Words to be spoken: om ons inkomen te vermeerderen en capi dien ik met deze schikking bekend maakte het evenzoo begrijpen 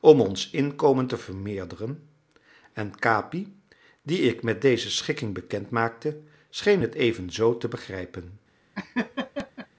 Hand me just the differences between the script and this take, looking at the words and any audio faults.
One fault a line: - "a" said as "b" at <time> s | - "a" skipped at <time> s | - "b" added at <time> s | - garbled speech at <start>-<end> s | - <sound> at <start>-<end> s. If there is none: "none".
- "scheen" added at 6.5 s
- "te" added at 7.6 s
- laugh at 8.7-9.7 s